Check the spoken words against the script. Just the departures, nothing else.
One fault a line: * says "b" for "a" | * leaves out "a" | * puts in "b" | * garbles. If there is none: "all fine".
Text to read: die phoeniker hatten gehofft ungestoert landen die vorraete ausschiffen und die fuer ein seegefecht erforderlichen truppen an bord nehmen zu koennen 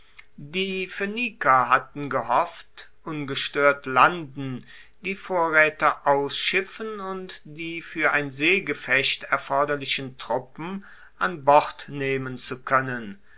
all fine